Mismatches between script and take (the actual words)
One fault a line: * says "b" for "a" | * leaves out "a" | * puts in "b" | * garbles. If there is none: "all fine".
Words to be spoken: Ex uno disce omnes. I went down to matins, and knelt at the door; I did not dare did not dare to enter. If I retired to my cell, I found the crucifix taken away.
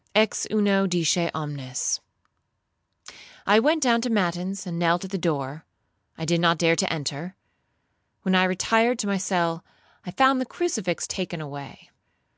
* leaves out "did not dare"
* says "When" for "If"